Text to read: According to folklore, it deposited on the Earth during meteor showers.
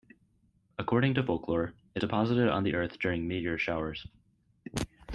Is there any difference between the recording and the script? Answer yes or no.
no